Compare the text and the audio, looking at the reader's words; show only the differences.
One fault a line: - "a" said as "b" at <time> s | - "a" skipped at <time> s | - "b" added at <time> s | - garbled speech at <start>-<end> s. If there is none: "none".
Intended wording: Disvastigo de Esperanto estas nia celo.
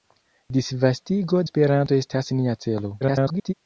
- "de" skipped at 1.4 s
- garbled speech at 3.0-3.5 s